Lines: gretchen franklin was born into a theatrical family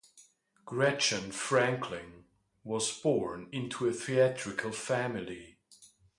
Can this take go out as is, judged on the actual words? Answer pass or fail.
pass